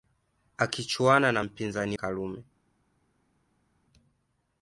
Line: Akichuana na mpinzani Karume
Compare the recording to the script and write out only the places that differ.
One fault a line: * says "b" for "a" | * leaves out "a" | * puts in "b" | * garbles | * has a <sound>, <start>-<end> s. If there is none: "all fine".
all fine